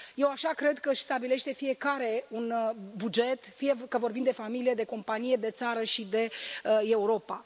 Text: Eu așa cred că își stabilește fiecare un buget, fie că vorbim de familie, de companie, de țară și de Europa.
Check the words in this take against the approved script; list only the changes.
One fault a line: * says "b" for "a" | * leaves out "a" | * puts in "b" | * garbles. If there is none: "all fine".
all fine